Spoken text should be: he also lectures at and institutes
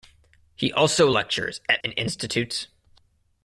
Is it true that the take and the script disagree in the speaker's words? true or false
false